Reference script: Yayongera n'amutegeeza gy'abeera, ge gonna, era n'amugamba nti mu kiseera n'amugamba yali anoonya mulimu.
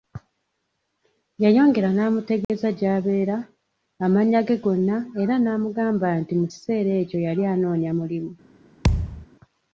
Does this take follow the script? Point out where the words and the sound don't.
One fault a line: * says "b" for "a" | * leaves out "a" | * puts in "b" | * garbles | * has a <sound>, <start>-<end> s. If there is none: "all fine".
* has a dropout, 2.4-2.5 s
* puts in "amannya"
* says "ekyo" for "n'amugamba"
* has a thud, 8.8-9.3 s